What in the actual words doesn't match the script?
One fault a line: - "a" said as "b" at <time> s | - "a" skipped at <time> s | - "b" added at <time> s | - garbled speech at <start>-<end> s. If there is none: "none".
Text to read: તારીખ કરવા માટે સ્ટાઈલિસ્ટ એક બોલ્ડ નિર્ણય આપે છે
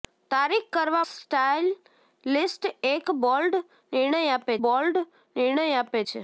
- "માટે" skipped at 1.0 s
- "બોલ્ડ નિર્ણય આપે" added at 4.6 s